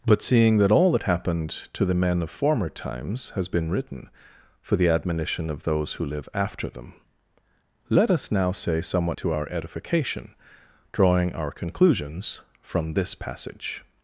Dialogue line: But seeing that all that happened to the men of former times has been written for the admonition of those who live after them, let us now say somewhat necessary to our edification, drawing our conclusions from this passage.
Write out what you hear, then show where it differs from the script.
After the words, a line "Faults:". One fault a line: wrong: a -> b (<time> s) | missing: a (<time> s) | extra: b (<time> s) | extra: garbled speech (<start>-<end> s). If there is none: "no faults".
But seeing that all that happened to the men of former times has been written for the admonition of those who live after them, let us now say somewhat to our edification, drawing our conclusions from this passage.
Faults:
missing: necessary (9.2 s)